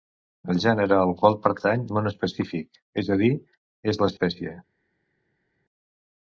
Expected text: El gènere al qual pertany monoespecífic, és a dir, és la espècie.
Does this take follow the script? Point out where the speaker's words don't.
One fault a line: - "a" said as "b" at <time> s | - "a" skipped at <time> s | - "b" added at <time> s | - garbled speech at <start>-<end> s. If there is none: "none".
none